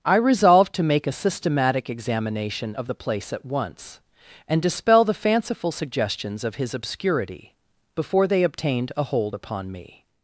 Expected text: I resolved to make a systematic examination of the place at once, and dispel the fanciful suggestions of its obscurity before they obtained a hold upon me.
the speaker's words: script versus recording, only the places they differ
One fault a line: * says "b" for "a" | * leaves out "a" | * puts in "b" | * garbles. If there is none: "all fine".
* says "his" for "its"